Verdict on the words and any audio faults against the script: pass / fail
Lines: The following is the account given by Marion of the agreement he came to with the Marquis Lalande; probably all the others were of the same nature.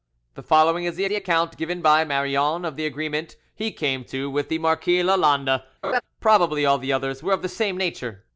fail